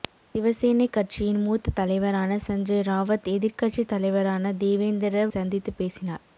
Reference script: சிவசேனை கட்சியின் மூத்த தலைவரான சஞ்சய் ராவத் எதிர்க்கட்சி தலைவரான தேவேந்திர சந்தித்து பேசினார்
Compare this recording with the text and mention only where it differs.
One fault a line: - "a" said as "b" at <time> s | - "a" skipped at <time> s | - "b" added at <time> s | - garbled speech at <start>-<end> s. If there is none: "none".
none